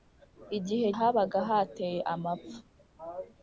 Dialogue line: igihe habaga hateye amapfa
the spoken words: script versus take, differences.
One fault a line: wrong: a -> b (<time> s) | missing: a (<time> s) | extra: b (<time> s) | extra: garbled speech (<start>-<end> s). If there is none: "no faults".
no faults